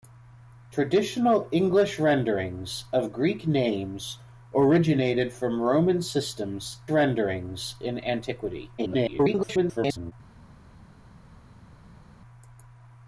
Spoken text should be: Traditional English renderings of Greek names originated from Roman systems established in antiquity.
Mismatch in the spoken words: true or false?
true